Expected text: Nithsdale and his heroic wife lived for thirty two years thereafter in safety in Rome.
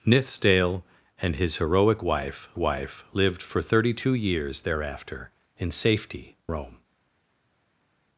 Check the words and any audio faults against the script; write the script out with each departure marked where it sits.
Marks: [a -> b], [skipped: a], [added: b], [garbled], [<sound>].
Nithsdale and his heroic wife [added: wife] lived for thirty two years thereafter in safety [skipped: in] Rome.